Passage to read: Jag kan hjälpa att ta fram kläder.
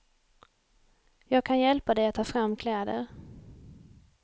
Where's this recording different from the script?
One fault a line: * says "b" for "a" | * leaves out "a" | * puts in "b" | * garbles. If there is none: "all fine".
* puts in "dig"